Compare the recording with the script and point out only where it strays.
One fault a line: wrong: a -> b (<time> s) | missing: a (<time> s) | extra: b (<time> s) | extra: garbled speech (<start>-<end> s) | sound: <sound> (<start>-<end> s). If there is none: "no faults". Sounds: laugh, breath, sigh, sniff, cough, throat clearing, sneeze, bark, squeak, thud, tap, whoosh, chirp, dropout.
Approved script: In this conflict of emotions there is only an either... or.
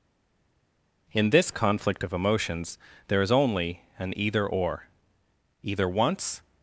extra: Either once (5.6 s)